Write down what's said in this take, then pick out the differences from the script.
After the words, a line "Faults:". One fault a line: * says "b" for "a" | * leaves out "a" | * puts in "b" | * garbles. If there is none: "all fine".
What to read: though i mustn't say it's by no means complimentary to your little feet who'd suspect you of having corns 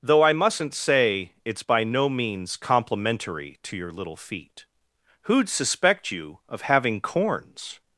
though i mustn't say it's by no means complimentary to your little feet who'd suspect you of having corns
Faults:
all fine